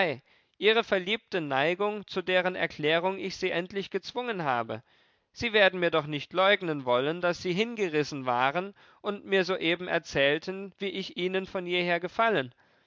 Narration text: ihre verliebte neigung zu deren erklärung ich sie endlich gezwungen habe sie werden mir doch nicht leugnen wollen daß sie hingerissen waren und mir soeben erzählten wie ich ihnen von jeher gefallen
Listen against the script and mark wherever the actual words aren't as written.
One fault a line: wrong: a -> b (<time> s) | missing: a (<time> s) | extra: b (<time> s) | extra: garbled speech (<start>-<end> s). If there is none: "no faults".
no faults